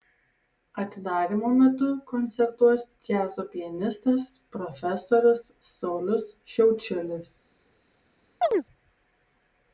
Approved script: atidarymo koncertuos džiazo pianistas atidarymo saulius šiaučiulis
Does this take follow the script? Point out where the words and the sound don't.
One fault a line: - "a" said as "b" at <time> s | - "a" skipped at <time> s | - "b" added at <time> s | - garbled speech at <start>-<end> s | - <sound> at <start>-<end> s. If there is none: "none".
- "metu" added at 1.6 s
- "atidarymo" said as "profesorius" at 4.6 s
- chirp at 8.4-8.6 s